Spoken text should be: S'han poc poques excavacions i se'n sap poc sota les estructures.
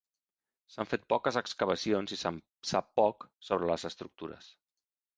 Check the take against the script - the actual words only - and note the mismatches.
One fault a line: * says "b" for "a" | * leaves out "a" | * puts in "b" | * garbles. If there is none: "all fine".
* says "fet" for "poc"
* says "sobre" for "sota"